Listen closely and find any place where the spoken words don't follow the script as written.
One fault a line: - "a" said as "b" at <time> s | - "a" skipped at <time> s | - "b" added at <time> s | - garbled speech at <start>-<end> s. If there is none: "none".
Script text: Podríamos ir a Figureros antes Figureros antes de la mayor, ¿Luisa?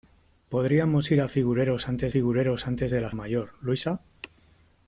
none